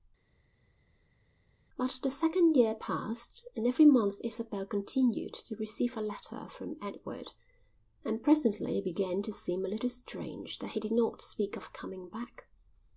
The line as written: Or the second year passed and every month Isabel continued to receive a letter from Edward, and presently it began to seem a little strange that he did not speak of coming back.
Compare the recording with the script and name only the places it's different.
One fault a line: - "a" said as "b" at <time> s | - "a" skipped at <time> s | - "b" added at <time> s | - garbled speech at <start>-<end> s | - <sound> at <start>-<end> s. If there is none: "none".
- "Or" said as "But" at 1.8 s